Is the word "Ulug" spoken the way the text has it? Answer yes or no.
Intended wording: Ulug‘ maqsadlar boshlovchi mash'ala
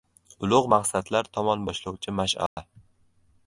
yes